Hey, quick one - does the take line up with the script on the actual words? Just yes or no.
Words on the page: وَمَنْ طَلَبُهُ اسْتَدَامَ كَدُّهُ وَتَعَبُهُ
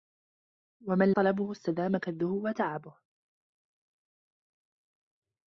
yes